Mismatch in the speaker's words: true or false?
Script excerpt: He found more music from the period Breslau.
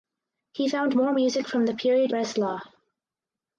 false